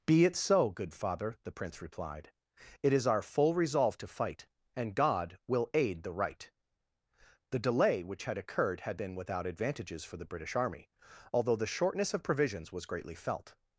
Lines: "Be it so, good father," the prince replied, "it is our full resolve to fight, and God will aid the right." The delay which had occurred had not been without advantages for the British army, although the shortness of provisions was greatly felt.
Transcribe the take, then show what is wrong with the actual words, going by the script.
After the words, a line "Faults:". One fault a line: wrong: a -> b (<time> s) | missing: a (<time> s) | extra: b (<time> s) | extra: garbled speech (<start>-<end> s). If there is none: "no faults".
"Be it so, good father," the prince replied, "it is our full resolve to fight, and God will aid the right." The delay which had occurred had been without advantages for the British army, although the shortness of provisions was greatly felt.
Faults:
missing: not (9.0 s)